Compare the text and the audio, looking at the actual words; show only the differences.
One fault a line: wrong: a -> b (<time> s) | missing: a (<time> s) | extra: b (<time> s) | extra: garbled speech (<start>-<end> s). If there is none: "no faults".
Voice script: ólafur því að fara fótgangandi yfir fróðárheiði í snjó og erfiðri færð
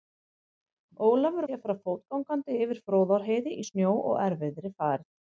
no faults